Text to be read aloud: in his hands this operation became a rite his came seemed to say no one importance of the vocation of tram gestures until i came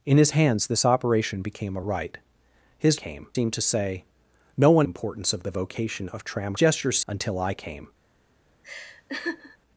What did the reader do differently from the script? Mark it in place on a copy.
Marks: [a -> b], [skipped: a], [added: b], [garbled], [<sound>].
in his hands this operation became a rite his came seemed to say no one importance of the vocation of tram gestures until i came [laugh]